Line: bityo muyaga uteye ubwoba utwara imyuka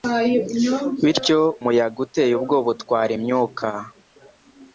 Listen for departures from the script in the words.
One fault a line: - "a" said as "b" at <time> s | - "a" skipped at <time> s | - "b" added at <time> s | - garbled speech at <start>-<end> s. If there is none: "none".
none